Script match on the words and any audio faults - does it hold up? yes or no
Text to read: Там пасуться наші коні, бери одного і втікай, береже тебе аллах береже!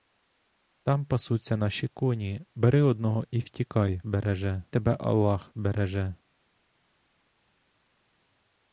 yes